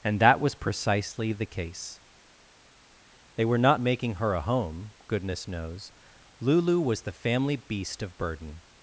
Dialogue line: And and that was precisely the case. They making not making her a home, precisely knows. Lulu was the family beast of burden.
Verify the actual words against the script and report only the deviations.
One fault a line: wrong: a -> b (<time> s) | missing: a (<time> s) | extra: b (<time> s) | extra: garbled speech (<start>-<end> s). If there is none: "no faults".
missing: and (0.2 s)
wrong: making -> were (3.5 s)
wrong: precisely -> goodness (5.1 s)